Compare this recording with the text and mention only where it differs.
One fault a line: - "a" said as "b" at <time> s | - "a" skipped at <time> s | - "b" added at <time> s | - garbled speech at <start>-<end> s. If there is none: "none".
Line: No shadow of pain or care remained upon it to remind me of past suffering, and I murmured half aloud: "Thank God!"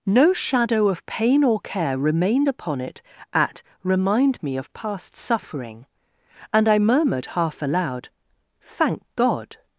- "to" said as "at" at 3.3 s